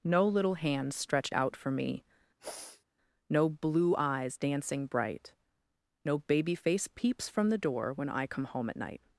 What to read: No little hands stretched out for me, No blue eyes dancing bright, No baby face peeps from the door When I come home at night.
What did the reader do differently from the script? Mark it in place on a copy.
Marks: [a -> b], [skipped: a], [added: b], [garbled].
No little hands stretched out for me, No blue eyes dancing bright, No baby face peeps from the door When I come home at night.